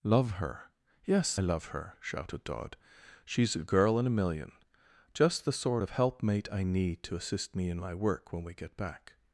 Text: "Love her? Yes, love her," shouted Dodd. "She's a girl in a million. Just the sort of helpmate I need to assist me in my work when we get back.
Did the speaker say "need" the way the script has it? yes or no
yes